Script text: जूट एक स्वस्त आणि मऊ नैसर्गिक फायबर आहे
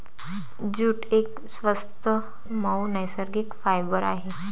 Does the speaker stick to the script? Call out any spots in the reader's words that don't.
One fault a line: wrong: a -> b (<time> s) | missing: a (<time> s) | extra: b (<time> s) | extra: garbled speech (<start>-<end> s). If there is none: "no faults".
missing: आणि (2.1 s)